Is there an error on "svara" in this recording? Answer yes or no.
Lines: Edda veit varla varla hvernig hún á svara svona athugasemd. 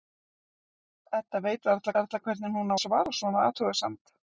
no